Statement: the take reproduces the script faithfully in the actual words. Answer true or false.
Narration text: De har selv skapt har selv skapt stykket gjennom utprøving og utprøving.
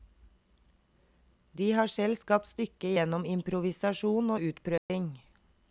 false